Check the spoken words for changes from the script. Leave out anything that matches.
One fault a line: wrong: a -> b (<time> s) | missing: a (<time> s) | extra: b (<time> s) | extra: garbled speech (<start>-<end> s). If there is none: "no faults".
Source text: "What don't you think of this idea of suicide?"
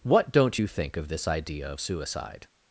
no faults